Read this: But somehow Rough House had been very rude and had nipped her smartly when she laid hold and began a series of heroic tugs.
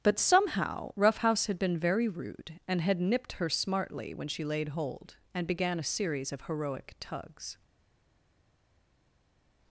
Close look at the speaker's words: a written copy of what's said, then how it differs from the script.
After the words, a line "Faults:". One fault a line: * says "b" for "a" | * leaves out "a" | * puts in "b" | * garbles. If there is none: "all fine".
But somehow Rough House had been very rude and had nipped her smartly when she laid hold and began a series of heroic tugs.
Faults:
all fine